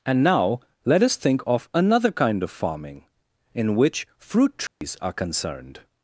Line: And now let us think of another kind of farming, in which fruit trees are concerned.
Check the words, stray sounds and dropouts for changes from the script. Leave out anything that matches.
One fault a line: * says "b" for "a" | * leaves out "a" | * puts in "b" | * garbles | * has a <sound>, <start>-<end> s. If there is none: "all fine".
* has a dropout, 4.7-4.8 s